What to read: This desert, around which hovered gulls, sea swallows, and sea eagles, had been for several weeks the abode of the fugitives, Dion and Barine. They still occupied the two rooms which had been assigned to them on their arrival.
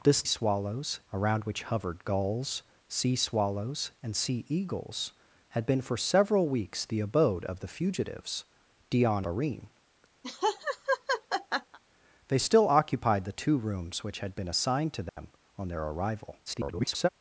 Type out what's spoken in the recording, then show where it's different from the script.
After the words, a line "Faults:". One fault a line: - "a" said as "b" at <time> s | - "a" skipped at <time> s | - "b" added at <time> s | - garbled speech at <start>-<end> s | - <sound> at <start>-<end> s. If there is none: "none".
This swallows, around which hovered gulls, sea swallows, and sea eagles, had been for several weeks the abode of the fugitives, Dion Barine. They still occupied the two rooms which had been assigned to them on their arrival. [garbled]
Faults:
- "desert" said as "swallows" at 0.2 s
- "and" skipped at 9.3 s
- laugh at 10.2-11.8 s
- dropout at 15.1-15.2 s
- garbled speech at 16.5-17.1 s